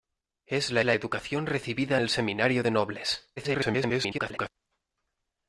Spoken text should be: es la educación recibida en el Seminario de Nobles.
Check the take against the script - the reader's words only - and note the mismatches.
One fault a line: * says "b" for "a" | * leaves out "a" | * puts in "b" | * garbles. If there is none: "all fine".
* puts in "la"
* leaves out "en"
* garbles